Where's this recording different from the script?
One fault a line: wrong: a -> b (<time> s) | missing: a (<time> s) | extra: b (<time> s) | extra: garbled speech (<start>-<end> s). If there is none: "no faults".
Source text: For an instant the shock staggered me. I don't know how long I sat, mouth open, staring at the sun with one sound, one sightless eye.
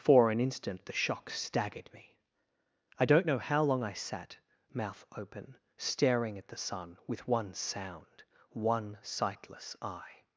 no faults